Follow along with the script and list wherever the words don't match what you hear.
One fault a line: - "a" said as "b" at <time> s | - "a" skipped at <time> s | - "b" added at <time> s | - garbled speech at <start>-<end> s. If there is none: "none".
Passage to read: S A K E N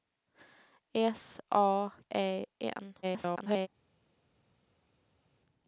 - "K" skipped at 1.9 s
- garbled speech at 3.0-3.7 s